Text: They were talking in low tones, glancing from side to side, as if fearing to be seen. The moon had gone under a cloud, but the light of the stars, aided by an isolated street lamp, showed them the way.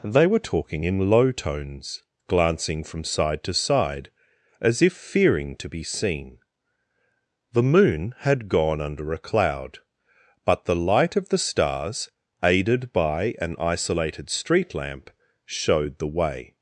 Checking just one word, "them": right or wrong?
wrong